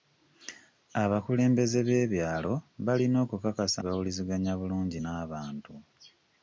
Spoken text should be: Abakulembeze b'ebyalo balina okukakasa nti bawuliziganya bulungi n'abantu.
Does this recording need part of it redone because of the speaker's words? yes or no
yes